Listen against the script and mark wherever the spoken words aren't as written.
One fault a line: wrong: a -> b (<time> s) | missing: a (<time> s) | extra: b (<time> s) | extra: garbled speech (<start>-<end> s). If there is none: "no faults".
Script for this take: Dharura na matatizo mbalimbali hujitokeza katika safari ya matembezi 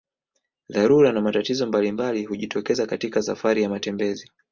no faults